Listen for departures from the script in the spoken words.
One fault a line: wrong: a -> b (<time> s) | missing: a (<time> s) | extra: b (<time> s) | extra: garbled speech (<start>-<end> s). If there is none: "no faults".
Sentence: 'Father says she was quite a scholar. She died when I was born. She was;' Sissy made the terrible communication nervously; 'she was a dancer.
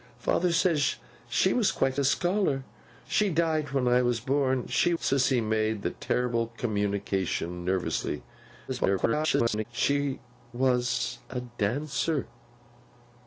missing: was (4.9 s)
extra: garbled speech (8.7-9.7 s)